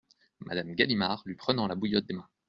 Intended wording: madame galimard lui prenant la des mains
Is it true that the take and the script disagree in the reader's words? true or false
true